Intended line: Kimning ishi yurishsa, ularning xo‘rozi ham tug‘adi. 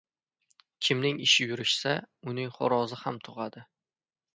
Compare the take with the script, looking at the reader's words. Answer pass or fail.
fail